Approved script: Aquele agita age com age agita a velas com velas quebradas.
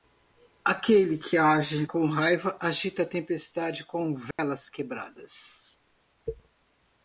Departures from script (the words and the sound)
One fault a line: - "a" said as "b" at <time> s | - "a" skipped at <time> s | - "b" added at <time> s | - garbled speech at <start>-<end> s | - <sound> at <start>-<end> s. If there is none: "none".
- "agita" said as "que" at 1.1 s
- "age" said as "raiva" at 2.1 s
- "velas" said as "tempestade" at 3.1 s
- dropout at 4.3-4.4 s